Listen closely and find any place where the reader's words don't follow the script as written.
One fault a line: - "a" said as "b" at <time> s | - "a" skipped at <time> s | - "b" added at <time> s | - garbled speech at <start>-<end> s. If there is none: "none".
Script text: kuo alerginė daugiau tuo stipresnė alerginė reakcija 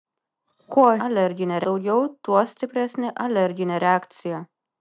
none